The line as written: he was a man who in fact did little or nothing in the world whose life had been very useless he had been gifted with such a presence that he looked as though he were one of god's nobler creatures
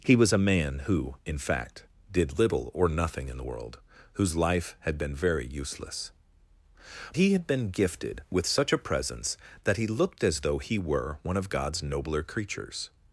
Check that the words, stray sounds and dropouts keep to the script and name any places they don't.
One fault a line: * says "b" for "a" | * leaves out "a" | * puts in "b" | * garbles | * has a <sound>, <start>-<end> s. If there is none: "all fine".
all fine